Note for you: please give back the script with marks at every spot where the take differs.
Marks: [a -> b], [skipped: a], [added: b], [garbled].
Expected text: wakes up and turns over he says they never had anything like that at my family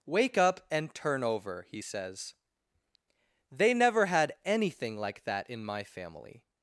[wakes -> wake] up and [turns -> turn] over he says they never had anything like that [at -> in] my family